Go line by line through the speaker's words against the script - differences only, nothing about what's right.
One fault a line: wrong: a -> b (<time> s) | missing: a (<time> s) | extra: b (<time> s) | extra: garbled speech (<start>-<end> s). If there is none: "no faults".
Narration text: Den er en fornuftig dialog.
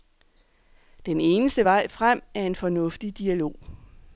extra: eneste vej frem (1.2 s)